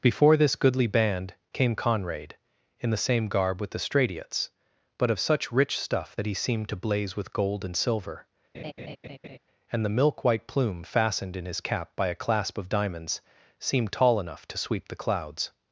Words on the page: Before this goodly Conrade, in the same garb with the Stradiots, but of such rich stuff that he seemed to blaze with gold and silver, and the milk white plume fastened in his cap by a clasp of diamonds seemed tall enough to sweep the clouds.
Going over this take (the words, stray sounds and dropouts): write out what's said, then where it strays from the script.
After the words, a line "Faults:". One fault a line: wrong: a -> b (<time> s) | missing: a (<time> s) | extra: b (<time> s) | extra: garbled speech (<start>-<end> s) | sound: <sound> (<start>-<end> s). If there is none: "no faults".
Before this goodly band came Conrade, in the same garb with the Stradiots, but of such rich stuff that he seemed to blaze with gold and silver, and the milk white plume fastened in his cap by a clasp of diamonds seemed tall enough to sweep the clouds.
Faults:
extra: band came (0.9 s)
sound: laugh (8.5-9.4 s)